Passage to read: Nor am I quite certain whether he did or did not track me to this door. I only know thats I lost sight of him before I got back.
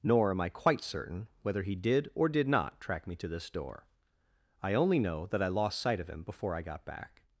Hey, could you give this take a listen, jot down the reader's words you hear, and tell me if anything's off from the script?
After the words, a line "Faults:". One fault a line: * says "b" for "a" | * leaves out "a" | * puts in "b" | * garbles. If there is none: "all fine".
Nor am I quite certain whether he did or did not track me to this door. I only know that I lost sight of him before I got back.
Faults:
* says "that" for "thats"